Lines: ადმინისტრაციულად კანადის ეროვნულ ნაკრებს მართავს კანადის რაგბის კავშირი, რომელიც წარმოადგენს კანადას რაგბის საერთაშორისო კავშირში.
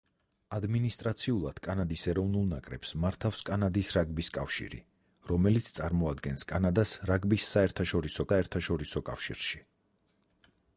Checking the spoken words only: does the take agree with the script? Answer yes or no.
no